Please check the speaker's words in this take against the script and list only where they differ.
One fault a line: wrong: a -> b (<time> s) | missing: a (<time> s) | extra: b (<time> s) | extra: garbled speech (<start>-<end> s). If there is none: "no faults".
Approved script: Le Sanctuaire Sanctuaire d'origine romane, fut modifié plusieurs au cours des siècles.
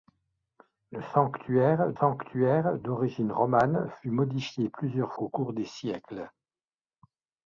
no faults